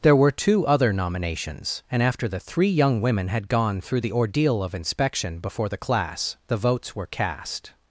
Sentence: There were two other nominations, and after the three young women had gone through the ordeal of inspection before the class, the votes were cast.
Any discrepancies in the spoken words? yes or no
no